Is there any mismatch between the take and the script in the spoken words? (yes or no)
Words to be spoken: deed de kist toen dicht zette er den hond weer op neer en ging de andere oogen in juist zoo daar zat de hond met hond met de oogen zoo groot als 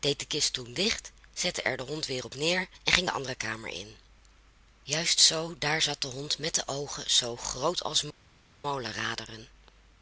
yes